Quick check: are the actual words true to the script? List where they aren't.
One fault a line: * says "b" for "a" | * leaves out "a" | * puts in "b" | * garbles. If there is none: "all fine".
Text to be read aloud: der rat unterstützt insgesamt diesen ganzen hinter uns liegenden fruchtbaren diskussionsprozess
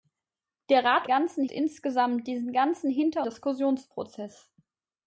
* says "ganzen" for "unterstützt"
* leaves out "uns liegenden fruchtbaren"